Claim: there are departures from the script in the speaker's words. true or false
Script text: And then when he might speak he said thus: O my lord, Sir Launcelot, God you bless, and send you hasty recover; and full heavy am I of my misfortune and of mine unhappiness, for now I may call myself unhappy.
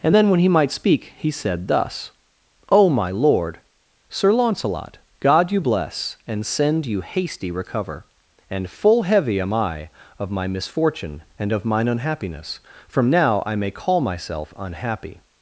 true